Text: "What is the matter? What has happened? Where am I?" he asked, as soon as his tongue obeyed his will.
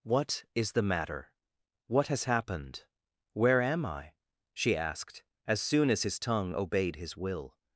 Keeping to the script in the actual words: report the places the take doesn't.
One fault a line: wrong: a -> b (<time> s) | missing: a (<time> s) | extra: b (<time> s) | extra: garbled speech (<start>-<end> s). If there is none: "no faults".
wrong: he -> she (4.5 s)